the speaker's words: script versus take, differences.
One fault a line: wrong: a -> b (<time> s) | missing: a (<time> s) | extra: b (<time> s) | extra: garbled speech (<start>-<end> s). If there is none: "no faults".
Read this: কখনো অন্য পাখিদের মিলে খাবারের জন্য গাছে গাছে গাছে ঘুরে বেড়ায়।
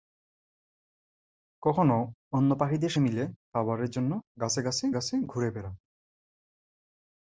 no faults